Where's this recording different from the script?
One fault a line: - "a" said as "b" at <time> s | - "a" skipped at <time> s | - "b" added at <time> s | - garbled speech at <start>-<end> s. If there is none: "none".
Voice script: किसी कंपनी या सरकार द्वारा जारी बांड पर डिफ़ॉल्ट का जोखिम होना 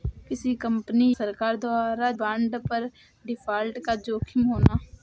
- "या" skipped at 1.1 s
- "जारी" skipped at 2.1 s